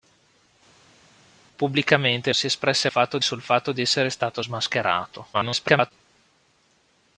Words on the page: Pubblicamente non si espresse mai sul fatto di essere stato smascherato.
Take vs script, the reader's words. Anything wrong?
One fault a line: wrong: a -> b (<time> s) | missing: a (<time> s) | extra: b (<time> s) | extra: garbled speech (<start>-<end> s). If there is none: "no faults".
missing: non (2.3 s)
wrong: mai -> fatto (2.9 s)
extra: garbled speech (5.3-5.9 s)